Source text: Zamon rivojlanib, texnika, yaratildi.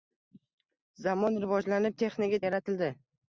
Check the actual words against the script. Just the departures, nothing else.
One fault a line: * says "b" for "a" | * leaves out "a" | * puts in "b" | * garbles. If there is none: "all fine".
all fine